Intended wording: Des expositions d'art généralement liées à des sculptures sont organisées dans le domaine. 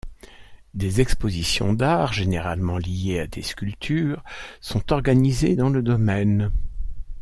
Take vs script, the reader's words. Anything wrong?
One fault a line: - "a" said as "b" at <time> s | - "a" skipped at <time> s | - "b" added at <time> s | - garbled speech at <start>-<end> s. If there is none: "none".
none